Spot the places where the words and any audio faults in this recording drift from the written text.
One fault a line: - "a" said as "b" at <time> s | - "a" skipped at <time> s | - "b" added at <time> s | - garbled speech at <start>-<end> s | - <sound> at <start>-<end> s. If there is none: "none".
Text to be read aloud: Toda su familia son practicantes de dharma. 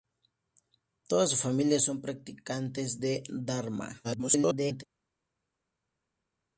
- garbled speech at 4.0-4.8 s